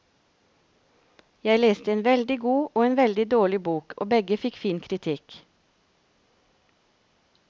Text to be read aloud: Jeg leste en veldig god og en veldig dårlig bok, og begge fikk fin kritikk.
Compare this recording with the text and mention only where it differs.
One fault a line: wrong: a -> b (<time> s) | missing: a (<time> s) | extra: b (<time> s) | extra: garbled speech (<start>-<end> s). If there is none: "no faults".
no faults